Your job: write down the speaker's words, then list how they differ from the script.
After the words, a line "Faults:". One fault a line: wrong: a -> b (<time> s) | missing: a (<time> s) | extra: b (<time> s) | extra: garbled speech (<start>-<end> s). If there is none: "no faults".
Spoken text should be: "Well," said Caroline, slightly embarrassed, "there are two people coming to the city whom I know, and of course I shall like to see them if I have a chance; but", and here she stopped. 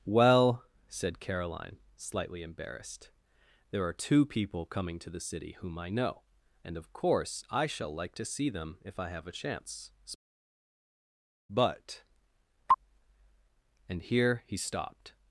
"Well," said Caroline, slightly embarrassed, "there are two people coming to the city whom I know, and of course I shall like to see them if I have a chance; but", and here he stopped.
Faults:
wrong: she -> he (14.5 s)